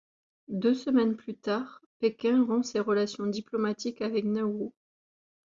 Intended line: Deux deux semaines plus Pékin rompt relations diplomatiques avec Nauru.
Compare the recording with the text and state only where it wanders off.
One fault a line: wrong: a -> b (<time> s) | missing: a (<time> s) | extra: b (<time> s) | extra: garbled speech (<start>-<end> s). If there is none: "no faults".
missing: deux (0.7 s)
extra: tard (1.4 s)
extra: ses (2.6 s)